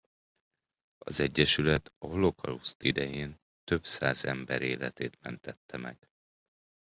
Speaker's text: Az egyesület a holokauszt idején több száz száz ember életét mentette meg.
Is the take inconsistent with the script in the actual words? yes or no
yes